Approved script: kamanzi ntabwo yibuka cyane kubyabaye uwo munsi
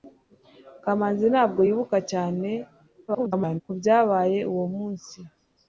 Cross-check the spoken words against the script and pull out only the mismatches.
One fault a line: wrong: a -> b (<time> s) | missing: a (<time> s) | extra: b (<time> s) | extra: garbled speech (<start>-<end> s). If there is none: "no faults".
extra: garbled speech (3.1-3.6 s)